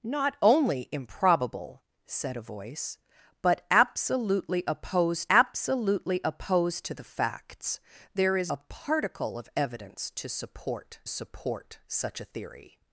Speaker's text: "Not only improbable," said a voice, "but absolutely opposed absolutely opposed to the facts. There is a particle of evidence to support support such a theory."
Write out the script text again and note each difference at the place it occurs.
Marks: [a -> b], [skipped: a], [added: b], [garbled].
"Not only improbable," said a voice, "but absolutely opposed absolutely opposed to the facts. There is a particle of evidence to support support such a theory."